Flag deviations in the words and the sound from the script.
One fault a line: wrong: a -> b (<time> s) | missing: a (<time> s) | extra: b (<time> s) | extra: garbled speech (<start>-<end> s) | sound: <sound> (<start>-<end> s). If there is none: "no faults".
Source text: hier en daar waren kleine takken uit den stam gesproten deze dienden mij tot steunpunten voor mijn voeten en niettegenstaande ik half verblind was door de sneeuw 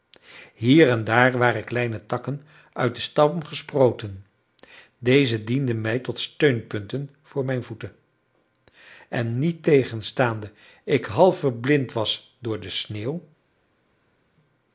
no faults